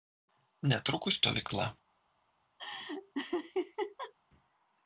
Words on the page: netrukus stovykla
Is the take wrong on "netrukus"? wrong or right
right